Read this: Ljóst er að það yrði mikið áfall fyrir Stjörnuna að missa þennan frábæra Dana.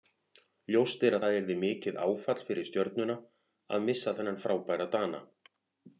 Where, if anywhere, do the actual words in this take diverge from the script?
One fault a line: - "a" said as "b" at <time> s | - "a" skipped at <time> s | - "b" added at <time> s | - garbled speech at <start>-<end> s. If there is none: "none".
none